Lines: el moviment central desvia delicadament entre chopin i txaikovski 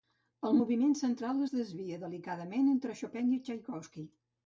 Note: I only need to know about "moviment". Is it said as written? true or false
true